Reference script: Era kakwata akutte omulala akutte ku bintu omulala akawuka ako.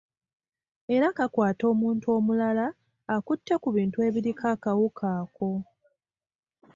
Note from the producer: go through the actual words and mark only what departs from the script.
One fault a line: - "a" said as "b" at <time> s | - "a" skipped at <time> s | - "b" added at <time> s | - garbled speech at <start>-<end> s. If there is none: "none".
- "akutte" said as "omuntu" at 1.7 s
- "omulala" said as "ebiriko" at 4.1 s